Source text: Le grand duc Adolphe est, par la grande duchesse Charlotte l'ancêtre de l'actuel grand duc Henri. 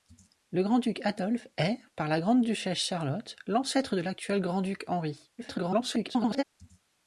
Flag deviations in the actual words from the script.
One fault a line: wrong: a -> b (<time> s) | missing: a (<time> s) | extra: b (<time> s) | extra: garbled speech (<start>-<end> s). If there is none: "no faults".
extra: garbled speech (5.4-6.4 s)